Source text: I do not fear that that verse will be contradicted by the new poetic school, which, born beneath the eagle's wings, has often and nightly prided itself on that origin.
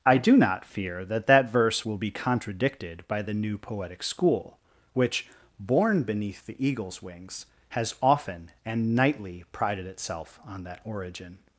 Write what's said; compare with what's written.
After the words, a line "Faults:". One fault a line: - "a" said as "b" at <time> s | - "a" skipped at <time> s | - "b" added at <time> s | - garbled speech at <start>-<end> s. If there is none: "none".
I do not fear that that verse will be contradicted by the new poetic school, which, born beneath the eagle's wings, has often and nightly prided itself on that origin.
Faults:
none